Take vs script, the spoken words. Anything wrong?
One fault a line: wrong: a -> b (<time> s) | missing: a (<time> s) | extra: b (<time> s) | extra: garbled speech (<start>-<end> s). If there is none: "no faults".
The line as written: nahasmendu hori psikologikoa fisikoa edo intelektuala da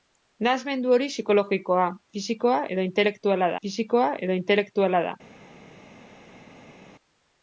extra: fisikoa edo intelektuala (3.7 s)